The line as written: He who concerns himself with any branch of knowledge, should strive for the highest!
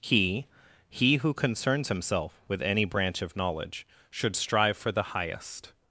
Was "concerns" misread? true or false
false